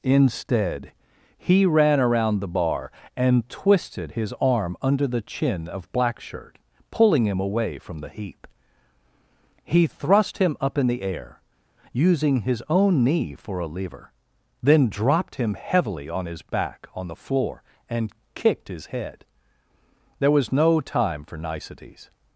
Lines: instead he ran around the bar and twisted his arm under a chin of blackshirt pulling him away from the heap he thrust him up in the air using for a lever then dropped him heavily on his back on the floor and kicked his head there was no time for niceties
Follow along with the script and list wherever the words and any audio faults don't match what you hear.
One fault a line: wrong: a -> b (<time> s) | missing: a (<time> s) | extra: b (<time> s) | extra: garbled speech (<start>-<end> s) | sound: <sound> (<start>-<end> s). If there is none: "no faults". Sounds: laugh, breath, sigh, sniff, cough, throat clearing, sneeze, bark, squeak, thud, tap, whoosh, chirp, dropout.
wrong: a -> the (5.1 s)
extra: his own knee (12.4 s)